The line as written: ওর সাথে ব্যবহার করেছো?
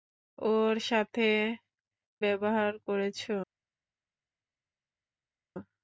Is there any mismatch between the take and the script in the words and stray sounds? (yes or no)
no